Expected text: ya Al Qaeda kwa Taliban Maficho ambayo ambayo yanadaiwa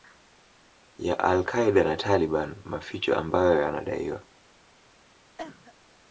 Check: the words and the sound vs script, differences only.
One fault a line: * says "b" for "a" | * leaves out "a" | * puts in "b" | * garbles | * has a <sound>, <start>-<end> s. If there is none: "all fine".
* says "na" for "kwa"
* leaves out "ambayo"
* has a cough, 5.4-5.7 s